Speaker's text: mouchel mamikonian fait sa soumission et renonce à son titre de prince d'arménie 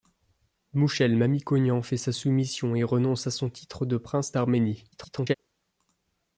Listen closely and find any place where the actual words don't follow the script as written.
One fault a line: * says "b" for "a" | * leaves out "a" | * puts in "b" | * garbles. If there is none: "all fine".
* garbles